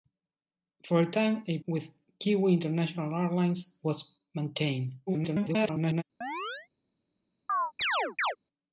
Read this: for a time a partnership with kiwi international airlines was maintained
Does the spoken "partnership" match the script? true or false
false